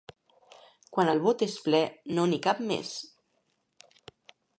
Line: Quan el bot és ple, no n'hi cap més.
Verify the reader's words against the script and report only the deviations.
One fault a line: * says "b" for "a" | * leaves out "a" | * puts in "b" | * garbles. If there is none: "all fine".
all fine